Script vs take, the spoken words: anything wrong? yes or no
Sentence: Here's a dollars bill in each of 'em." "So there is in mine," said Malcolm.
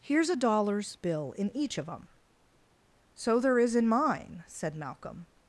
no